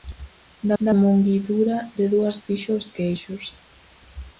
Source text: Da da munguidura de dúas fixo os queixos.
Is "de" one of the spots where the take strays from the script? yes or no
no